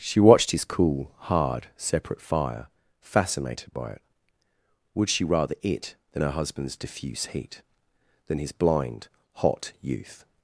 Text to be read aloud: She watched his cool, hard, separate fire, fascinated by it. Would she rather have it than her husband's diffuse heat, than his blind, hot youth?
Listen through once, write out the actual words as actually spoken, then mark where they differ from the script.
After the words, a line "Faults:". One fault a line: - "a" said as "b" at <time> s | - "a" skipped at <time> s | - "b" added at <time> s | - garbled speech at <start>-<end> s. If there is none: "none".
She watched his cool, hard, separate fire, fascinated by it. Would she rather it than her husband's diffuse heat, than his blind, hot youth?
Faults:
- "have" skipped at 5.5 s